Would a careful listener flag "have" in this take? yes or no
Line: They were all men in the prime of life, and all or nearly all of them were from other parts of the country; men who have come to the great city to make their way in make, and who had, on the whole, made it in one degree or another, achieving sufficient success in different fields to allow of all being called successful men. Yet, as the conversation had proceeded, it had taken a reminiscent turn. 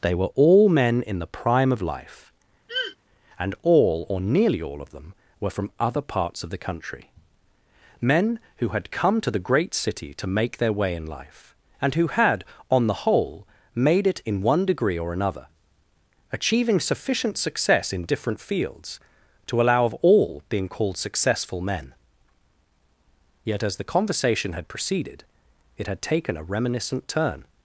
yes